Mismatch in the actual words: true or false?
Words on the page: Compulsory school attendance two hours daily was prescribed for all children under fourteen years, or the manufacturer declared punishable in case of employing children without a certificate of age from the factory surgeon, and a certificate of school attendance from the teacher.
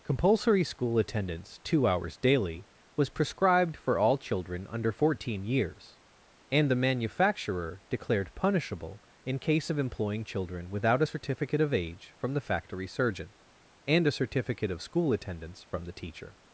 true